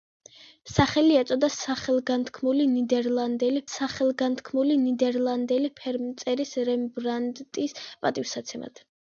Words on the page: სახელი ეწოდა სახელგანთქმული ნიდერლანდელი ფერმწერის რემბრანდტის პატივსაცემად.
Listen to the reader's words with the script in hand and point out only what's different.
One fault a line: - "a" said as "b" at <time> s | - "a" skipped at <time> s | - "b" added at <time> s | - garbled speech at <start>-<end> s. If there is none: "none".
- "სახელგანთქმული ნიდერლანდელი" added at 3.7 s